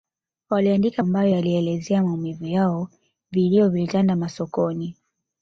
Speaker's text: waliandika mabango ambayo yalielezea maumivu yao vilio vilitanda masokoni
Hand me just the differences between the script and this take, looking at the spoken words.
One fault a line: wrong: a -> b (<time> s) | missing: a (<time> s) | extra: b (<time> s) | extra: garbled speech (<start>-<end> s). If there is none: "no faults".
missing: mabango (1.0 s)